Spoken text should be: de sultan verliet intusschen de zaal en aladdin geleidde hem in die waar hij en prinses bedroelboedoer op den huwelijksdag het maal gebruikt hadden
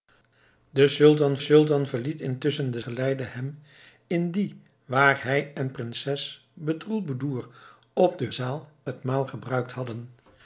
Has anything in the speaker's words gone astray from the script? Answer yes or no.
yes